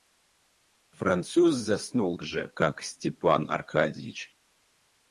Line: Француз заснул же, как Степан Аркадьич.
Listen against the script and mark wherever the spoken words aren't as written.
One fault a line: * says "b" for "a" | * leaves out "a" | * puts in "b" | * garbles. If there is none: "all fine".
all fine